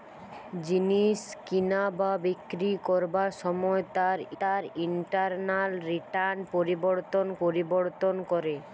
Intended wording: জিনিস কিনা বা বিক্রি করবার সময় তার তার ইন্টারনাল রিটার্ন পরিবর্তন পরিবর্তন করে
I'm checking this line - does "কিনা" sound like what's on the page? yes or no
yes